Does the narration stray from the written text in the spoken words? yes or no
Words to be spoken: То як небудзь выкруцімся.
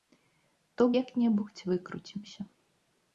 no